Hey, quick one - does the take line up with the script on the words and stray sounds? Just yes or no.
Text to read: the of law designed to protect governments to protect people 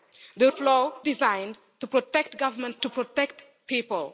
yes